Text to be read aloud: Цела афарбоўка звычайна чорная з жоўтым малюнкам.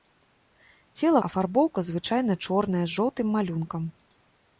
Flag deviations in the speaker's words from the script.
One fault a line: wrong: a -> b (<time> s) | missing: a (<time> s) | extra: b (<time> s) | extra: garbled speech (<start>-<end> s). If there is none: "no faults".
no faults